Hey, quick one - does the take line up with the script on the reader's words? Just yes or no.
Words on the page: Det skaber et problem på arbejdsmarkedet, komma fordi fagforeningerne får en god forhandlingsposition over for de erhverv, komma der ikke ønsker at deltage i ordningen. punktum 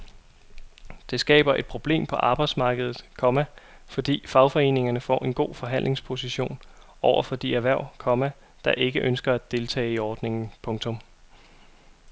yes